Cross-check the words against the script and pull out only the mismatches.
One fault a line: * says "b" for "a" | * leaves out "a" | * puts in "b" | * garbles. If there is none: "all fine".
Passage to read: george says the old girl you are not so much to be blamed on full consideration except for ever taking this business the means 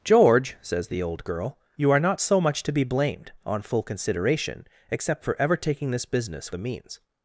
all fine